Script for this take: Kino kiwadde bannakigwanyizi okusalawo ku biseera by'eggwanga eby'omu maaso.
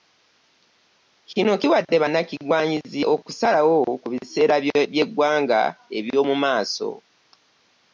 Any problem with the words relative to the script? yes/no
no